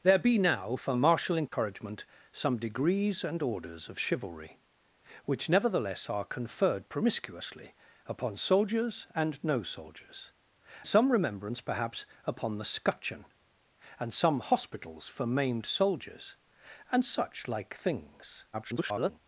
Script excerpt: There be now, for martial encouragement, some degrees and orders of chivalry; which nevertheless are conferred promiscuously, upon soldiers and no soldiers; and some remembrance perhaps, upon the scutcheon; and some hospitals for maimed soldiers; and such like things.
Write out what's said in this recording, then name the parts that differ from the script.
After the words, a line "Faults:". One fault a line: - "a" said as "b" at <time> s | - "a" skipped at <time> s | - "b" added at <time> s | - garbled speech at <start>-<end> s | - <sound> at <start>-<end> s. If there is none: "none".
There be now, for martial encouragement, some degrees and orders of chivalry; which nevertheless are conferred promiscuously, upon soldiers and no soldiers; some remembrance perhaps, upon the scutcheon; and some hospitals for maimed soldiers; and such like things. [garbled]
Faults:
- dropout at 1.5-1.5 s
- "and" skipped at 10.3 s
- garbled speech at 18.5-19.2 s